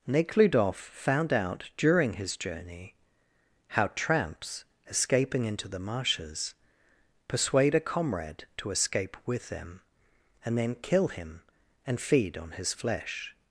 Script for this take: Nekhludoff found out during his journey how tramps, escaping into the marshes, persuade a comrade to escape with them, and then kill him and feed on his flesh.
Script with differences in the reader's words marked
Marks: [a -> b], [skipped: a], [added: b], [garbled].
Nekhludoff found out during his journey how tramps, escaping into the marshes, persuade a comrade to escape with them, and then kill him and feed on his flesh.